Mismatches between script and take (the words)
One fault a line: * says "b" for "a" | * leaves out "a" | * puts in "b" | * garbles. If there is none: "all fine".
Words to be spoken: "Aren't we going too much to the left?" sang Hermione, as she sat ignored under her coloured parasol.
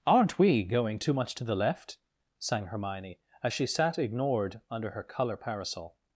* says "colour" for "coloured"